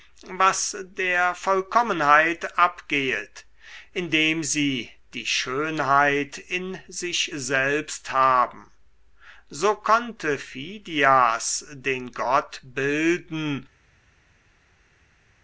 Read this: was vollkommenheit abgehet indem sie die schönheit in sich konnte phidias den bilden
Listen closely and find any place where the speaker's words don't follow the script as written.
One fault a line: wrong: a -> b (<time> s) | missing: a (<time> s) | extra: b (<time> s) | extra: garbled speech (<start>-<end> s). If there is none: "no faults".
extra: der (0.9 s)
extra: selbst haben so (7.3 s)
extra: gott (12.1 s)